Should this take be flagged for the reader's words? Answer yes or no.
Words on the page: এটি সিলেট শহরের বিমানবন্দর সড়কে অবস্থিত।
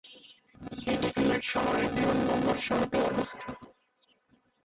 no